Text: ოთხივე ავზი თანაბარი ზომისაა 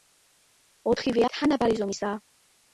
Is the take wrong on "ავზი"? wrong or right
wrong